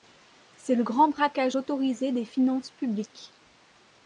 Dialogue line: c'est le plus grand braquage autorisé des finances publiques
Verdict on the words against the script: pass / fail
fail